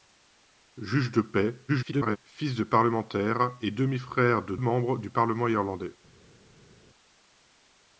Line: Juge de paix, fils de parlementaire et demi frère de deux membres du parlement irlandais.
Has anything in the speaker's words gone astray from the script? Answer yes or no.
yes